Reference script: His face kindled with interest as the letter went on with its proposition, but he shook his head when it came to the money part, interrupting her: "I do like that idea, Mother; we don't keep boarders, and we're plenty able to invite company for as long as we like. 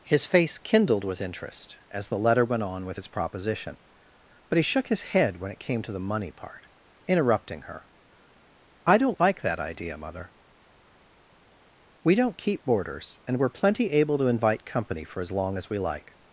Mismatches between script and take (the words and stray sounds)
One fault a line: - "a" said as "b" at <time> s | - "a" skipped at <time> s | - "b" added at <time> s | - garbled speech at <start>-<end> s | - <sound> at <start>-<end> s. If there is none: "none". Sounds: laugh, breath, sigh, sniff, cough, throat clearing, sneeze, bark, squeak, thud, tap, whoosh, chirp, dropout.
- "do" said as "don't" at 9.0 s